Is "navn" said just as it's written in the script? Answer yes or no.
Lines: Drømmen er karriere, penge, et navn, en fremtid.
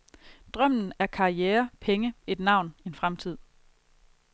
yes